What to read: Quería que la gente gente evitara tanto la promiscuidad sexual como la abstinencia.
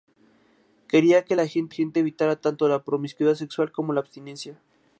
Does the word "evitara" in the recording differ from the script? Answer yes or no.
no